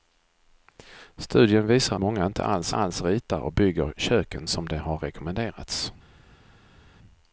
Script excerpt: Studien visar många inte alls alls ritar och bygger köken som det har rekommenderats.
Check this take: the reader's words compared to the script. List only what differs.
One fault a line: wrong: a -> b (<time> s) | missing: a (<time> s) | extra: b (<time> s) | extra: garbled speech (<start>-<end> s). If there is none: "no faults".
no faults